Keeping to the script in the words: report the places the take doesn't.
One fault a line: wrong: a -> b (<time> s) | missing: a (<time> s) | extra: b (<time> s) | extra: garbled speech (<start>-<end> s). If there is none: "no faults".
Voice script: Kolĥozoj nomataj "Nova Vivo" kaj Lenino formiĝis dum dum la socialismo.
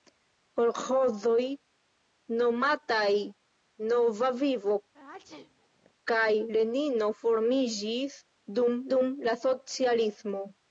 no faults